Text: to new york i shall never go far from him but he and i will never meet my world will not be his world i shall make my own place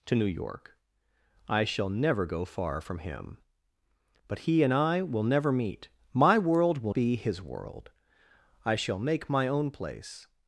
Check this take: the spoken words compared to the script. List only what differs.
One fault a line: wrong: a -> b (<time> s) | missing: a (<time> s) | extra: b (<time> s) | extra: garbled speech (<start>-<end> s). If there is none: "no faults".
missing: not (6.9 s)